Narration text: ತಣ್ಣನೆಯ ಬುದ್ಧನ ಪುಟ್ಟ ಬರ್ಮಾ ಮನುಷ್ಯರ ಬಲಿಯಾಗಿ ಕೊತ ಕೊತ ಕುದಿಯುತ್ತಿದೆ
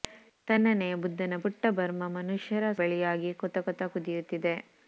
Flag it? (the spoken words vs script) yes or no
no